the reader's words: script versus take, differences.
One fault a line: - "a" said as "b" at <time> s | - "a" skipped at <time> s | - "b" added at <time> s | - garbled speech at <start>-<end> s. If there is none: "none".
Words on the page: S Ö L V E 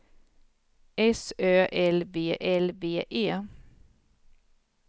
- "L V" added at 2.4 s